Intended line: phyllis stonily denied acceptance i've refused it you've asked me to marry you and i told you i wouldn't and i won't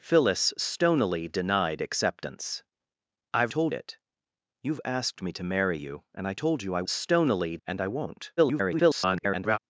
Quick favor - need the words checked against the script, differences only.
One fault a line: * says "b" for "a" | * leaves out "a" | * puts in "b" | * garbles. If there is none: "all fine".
* says "told" for "refused"
* says "stonily" for "wouldn't"
* garbles